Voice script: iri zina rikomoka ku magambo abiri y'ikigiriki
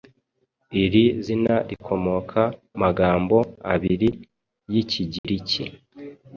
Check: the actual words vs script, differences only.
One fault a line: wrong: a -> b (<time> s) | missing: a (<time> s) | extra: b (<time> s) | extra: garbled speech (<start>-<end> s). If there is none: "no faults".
missing: ku (2.4 s)